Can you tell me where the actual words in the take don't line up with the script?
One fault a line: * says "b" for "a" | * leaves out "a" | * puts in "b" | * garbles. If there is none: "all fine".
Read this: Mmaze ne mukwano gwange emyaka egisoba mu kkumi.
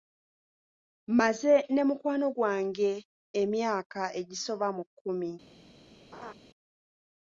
all fine